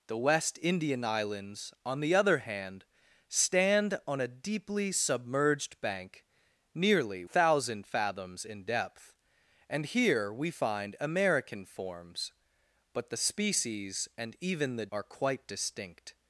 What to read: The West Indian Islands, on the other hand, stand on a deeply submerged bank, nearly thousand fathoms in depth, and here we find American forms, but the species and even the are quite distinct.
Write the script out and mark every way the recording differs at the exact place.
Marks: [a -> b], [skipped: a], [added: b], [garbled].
The West Indian Islands, on the other hand, stand on a deeply submerged bank, nearly thousand fathoms in depth, and here we find American forms, but the species and even the are quite distinct.